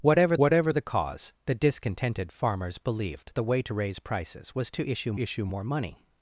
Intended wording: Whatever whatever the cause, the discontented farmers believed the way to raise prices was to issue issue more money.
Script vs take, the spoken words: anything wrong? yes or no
no